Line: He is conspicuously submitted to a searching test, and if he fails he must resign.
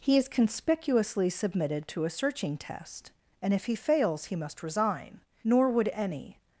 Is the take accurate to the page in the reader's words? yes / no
no